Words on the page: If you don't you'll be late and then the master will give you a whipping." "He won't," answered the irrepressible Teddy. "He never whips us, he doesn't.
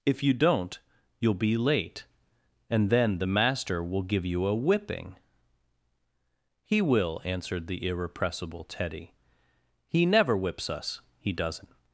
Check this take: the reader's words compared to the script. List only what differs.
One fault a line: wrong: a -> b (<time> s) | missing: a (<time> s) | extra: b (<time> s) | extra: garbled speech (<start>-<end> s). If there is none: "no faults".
wrong: won't -> will (6.8 s)